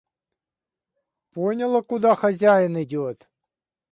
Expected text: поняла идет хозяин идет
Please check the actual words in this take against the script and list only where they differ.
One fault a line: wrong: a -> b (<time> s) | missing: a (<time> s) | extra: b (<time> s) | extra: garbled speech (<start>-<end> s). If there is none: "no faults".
wrong: идет -> куда (1.8 s)